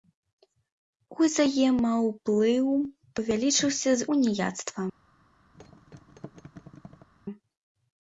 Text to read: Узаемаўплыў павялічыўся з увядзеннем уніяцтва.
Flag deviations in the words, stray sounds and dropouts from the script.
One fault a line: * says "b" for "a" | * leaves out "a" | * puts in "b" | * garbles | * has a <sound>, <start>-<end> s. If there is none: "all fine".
* leaves out "увядзеннем"
* has a thud, 5.5-7.1 s